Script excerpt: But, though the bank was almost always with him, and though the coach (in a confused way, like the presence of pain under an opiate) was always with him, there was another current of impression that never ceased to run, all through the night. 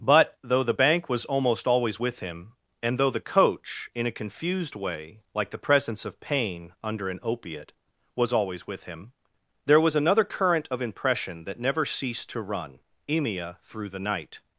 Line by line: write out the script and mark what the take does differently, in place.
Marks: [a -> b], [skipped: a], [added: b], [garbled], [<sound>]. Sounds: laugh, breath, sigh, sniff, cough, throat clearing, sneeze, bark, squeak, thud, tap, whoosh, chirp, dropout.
But, though the bank was almost always with him, and though the coach (in a confused way, like the presence of pain under an opiate) was always with him, there was another current of impression that never ceased to run, [all -> emia] through the night.